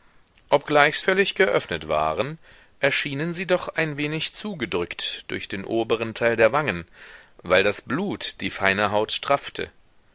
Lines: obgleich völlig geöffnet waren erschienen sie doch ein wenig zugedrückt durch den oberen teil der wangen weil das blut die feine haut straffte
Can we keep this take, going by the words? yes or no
yes